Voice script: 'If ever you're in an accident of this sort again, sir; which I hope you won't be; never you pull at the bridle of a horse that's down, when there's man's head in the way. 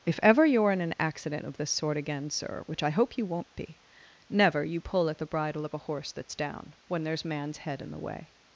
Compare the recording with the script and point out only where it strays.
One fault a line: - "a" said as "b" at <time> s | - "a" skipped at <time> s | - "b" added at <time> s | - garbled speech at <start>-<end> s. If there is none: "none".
none